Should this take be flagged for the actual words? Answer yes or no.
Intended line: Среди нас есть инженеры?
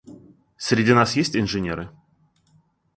no